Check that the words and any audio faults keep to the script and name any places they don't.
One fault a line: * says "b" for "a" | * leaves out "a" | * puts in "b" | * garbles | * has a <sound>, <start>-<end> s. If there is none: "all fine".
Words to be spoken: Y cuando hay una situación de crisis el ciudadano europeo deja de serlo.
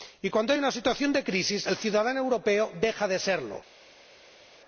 all fine